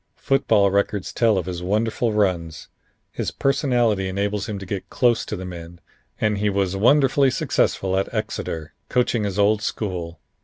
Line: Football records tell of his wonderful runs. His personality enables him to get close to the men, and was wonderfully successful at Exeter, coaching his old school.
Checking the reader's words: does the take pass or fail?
fail